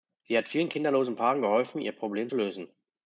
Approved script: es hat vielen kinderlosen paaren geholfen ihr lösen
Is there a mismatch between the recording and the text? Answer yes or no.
yes